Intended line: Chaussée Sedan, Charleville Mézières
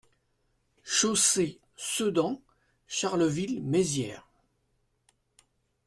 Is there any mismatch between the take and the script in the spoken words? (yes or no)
no